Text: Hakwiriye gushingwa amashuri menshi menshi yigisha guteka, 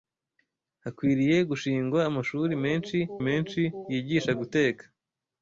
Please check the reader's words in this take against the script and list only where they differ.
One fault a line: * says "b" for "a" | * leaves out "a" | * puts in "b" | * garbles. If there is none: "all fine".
all fine